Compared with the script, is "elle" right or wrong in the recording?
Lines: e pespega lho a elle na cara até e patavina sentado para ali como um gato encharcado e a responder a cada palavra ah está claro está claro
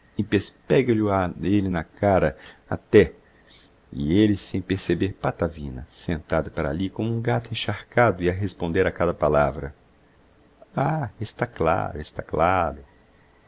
right